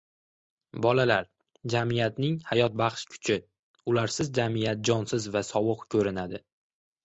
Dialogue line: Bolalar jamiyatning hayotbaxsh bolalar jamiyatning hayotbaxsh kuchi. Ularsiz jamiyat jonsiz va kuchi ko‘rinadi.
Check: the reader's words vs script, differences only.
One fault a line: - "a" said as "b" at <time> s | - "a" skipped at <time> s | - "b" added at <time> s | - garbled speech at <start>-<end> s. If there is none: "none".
- "bolalar jamiyatning hayotbaxsh" skipped at 3.0 s
- "kuchi" said as "sovuq" at 5.5 s